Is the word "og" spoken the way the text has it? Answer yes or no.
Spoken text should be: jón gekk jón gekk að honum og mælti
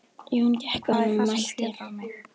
yes